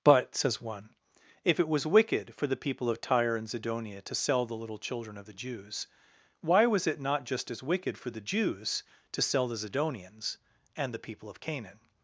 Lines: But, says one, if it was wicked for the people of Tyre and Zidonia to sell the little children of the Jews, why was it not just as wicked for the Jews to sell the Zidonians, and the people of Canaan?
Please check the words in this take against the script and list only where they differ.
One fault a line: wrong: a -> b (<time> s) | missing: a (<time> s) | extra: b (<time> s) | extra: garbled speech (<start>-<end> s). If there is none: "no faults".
no faults